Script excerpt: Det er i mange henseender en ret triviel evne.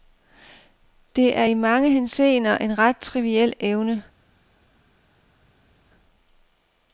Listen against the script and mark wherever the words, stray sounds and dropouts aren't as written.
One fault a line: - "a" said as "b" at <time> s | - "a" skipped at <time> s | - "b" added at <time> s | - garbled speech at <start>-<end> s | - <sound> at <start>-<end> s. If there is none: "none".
none